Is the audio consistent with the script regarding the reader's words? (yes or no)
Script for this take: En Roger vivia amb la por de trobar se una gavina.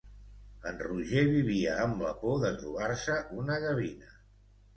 yes